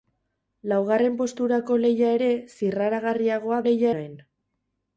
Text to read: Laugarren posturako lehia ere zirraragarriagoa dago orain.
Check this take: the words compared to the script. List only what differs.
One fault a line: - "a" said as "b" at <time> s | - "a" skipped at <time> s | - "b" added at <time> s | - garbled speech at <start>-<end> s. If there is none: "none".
- "dago" said as "lehia" at 3.7 s